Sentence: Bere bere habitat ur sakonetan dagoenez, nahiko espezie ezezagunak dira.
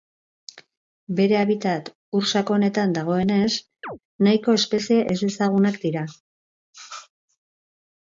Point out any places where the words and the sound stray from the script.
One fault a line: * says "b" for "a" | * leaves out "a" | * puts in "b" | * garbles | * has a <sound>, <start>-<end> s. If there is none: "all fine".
* leaves out "bere"
* has a chirp, 3.8-4.0 s